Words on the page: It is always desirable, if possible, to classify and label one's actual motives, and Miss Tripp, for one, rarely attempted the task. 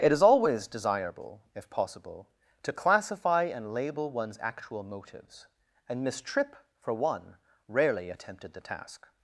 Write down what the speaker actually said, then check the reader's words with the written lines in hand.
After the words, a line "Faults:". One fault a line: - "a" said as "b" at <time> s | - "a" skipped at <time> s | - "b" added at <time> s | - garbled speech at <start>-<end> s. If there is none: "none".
It is always desirable, if possible, to classify and label one's actual motives, and Miss Tripp, for one, rarely attempted the task.
Faults:
none